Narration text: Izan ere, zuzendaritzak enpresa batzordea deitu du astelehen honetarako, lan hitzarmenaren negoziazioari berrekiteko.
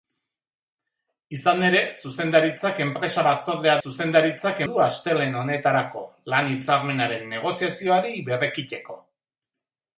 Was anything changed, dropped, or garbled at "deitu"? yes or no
yes